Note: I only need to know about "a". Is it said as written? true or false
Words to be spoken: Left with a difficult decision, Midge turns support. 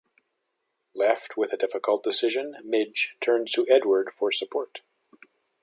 true